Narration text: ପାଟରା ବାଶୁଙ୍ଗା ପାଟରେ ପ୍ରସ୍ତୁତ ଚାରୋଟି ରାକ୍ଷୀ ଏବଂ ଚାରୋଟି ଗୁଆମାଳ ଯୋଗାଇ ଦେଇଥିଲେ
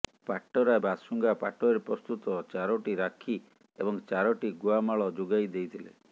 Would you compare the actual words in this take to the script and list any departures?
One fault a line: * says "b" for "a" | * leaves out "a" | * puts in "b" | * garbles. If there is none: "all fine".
all fine